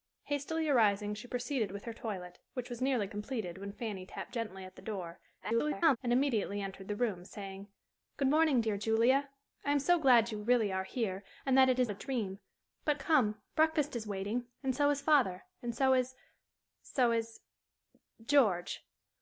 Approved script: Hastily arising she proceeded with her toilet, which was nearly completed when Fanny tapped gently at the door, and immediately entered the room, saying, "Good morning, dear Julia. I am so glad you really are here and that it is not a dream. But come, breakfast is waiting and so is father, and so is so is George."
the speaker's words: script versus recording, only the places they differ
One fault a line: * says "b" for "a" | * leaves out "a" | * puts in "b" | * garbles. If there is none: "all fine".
* garbles
* leaves out "not"